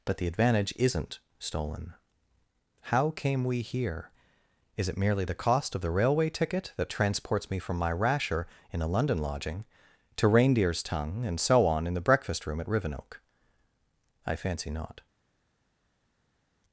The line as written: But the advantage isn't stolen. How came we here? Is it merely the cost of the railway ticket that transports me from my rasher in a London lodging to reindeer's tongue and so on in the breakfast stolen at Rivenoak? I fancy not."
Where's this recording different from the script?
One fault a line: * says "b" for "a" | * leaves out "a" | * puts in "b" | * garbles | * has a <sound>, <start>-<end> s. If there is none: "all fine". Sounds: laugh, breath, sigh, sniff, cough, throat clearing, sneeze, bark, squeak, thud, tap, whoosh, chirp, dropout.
* says "room" for "stolen"